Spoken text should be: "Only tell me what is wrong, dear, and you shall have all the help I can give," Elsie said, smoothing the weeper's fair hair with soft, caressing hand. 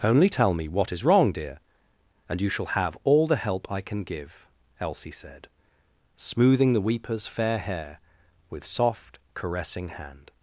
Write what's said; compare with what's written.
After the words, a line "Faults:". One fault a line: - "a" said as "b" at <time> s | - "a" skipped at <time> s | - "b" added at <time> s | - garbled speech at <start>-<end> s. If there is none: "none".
"Only tell me what is wrong, dear, and you shall have all the help I can give," Elsie said, smoothing the weeper's fair hair with soft, caressing hand.
Faults:
none